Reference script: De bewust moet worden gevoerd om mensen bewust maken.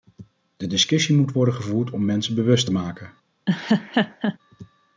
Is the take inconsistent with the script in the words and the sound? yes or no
yes